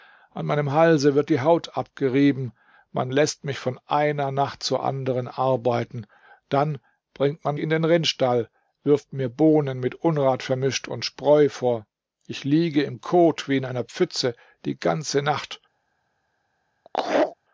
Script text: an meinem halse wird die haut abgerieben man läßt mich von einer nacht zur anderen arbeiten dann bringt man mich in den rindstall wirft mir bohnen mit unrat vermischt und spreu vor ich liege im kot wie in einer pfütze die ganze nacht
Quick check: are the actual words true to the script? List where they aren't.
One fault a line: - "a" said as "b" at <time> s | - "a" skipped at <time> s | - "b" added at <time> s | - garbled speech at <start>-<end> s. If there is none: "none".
- "mich" skipped at 7.6 s